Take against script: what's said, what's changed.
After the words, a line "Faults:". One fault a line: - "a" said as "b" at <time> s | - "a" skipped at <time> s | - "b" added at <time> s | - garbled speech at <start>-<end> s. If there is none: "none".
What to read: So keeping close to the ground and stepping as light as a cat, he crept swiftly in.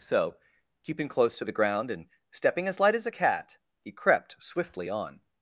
So keeping close to the ground and stepping as light as a cat, he crept swiftly on.
Faults:
- "in" said as "on" at 4.9 s